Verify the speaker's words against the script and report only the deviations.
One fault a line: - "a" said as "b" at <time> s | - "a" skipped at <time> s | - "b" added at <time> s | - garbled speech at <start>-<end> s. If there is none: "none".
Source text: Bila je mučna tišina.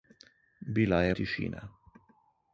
- "mučna" skipped at 1.1 s